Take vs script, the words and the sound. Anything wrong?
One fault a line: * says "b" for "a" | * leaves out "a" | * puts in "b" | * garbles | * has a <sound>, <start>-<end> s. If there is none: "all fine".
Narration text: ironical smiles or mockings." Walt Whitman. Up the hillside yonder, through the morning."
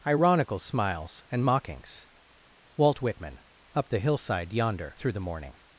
* says "and" for "or"